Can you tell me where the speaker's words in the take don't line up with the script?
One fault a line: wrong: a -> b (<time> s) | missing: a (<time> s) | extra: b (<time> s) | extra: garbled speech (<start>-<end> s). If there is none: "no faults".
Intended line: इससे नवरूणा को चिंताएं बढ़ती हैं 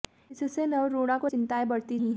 no faults